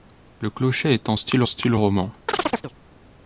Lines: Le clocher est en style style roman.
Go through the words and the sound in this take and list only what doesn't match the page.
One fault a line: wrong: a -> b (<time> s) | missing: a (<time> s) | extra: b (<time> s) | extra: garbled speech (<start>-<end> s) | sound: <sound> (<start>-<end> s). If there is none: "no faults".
sound: chirp (2.3-2.7 s)